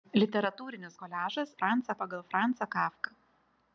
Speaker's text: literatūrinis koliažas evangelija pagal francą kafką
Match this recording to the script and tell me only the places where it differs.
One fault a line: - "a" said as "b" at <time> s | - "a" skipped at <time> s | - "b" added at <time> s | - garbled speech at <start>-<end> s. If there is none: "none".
- "evangelija" said as "francą" at 1.6 s